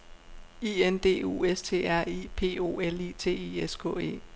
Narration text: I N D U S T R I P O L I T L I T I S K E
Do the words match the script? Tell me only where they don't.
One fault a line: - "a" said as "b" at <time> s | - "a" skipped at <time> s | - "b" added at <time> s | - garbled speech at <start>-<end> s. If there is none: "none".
- "L I T" skipped at 3.6 s